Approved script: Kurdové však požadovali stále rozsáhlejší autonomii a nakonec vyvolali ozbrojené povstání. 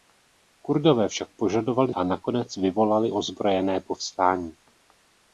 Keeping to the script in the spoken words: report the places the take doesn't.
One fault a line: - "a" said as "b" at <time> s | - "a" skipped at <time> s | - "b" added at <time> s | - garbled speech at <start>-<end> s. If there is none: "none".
- "stále rozsáhlejší autonomii" skipped at 1.9 s